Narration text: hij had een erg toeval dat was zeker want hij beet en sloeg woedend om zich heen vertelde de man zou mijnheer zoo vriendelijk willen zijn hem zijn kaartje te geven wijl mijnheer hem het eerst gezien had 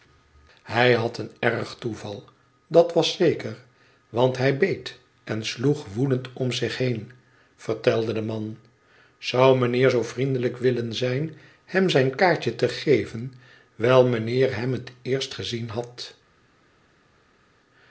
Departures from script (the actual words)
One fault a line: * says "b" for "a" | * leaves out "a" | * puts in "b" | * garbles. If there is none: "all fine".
all fine